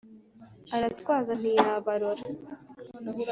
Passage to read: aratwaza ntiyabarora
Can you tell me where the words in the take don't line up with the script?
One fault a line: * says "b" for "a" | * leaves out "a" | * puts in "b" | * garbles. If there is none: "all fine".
all fine